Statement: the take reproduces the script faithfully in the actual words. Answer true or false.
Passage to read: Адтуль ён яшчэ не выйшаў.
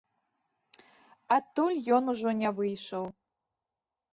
false